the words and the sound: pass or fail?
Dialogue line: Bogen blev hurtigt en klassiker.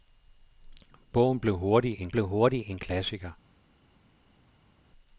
fail